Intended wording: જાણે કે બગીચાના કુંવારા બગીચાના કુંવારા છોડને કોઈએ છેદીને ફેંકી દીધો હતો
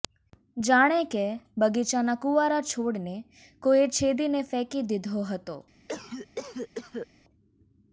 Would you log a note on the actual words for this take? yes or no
yes